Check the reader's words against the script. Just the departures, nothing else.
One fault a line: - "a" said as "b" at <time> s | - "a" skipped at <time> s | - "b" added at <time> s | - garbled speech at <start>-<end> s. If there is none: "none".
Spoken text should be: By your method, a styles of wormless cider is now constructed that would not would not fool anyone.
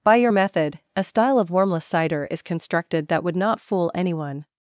- "styles" said as "style" at 1.0 s
- "now" skipped at 2.4 s
- "would not" skipped at 3.6 s